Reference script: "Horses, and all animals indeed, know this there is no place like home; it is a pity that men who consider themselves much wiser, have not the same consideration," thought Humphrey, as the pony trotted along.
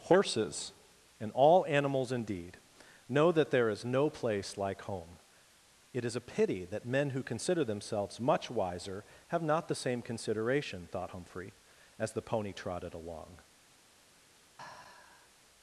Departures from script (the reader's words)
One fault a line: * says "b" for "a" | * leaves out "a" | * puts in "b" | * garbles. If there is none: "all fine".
* says "that" for "this"